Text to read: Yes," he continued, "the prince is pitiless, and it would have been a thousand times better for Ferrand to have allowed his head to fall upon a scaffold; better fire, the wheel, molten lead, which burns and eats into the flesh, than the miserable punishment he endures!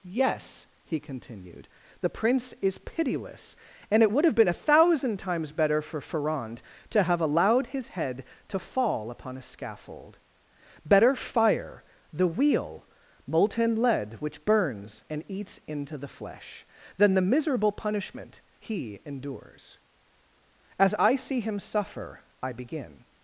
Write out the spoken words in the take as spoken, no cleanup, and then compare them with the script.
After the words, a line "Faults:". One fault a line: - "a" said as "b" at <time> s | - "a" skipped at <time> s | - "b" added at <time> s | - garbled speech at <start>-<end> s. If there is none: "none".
Yes," he continued, "the prince is pitiless, and it would have been a thousand times better for Ferrand to have allowed his head to fall upon a scaffold; better fire, the wheel, molten lead, which burns and eats into the flesh, than the miserable punishment he endures! As I see him suffer I begin
Faults:
- "As I see him suffer I begin" added at 20.8 s